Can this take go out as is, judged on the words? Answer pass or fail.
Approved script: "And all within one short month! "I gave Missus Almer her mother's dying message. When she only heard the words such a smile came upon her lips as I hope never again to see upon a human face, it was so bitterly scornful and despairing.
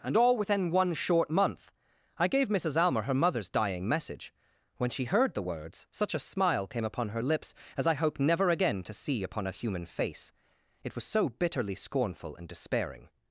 fail